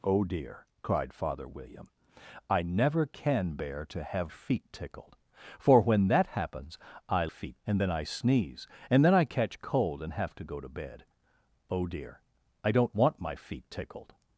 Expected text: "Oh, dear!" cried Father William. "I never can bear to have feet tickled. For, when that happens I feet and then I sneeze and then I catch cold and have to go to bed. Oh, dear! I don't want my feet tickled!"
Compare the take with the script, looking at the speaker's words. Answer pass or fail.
pass